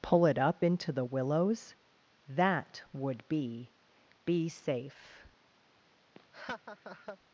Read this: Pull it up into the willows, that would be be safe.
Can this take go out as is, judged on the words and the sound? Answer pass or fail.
fail